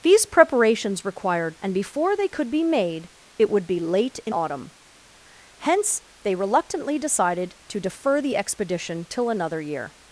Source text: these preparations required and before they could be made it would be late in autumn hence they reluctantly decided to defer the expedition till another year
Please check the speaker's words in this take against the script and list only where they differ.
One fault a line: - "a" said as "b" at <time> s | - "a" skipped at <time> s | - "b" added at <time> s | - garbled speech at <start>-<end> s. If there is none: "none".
none